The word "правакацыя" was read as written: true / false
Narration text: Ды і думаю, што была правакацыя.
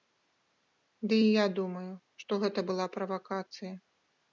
true